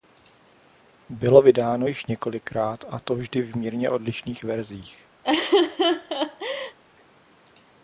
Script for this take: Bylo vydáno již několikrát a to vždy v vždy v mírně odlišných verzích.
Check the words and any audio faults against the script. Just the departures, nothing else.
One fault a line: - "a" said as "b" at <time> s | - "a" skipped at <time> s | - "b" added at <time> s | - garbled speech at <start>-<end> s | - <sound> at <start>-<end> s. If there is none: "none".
- "vždy v" skipped at 3.6 s
- laugh at 5.2-6.8 s